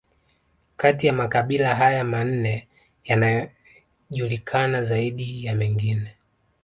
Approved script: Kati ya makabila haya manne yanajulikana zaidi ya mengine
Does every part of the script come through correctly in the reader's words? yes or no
yes